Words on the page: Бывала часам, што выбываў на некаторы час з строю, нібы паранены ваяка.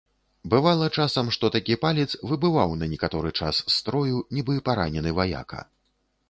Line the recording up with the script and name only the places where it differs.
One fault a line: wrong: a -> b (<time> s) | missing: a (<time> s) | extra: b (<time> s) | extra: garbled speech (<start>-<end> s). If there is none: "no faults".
extra: такі палец (1.6 s)